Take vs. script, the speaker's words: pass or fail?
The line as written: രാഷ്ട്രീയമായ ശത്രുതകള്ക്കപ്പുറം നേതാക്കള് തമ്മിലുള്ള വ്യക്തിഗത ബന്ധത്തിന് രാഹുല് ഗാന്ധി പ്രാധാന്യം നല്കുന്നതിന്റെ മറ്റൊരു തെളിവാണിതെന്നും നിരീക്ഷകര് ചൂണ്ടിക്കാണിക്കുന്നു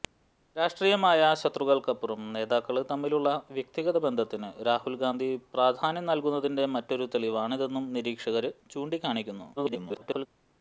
fail